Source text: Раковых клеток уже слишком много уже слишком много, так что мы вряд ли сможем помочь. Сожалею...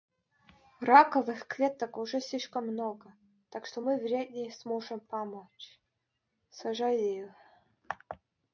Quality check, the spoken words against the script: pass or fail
fail